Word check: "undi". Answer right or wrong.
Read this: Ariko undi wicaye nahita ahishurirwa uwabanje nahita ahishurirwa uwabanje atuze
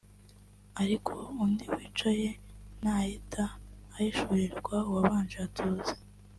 right